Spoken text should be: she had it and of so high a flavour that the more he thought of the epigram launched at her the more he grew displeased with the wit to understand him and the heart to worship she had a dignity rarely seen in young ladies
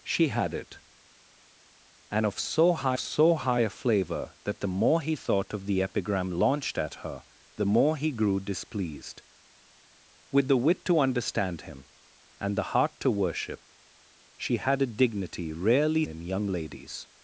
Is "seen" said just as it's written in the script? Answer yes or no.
no